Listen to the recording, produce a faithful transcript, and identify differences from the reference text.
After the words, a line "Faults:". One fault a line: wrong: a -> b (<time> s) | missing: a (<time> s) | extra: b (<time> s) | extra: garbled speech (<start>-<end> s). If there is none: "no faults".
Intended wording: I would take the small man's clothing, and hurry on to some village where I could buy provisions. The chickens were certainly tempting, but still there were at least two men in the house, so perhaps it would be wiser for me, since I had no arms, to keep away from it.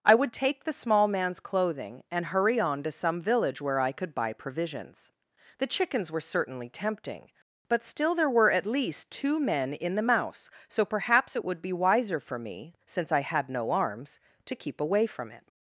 I would take the small man's clothing, and hurry on to some village where I could buy provisions. The chickens were certainly tempting, but still there were at least two men in the mouse, so perhaps it would be wiser for me, since I had no arms, to keep away from it.
Faults:
wrong: house -> mouse (10.0 s)